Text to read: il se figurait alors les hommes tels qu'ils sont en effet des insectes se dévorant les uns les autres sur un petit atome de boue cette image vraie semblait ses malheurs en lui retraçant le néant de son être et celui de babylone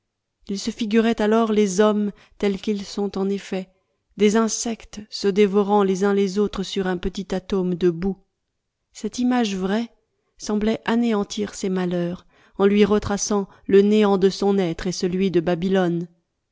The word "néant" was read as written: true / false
true